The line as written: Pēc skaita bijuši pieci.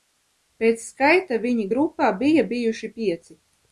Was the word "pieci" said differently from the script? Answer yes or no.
no